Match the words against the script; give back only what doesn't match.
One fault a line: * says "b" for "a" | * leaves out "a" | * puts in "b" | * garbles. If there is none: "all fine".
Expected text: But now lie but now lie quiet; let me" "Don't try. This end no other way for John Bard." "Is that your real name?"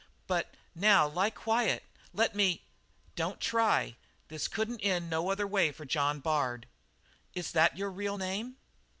* leaves out "but now lie"
* puts in "couldn't"